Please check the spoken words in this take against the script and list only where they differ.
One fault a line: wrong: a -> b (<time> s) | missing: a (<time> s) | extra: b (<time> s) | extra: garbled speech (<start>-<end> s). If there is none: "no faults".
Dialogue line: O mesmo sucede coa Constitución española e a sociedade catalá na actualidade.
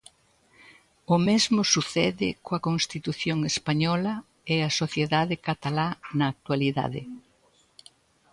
no faults